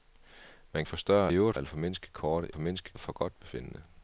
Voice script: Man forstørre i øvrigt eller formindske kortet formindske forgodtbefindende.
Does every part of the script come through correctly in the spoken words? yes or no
yes